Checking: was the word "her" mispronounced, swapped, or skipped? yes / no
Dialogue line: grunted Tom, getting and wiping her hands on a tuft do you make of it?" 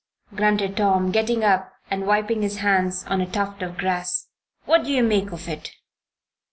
yes